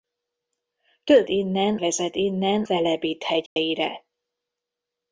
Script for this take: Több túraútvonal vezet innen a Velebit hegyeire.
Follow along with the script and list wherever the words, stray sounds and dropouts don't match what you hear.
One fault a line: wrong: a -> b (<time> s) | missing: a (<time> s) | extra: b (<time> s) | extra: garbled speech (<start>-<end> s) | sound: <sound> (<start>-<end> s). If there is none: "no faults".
wrong: túraútvonal -> innen (1.3 s)
missing: a (2.6 s)
sound: dropout (3.5-3.6 s)